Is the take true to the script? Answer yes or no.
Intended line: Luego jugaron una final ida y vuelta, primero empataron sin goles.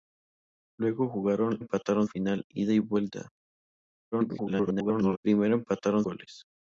no